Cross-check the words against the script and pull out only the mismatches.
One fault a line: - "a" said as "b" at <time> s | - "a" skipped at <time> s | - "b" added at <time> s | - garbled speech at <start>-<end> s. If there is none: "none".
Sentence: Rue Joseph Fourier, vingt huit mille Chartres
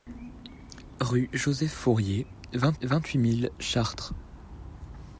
- "vingt" added at 2.8 s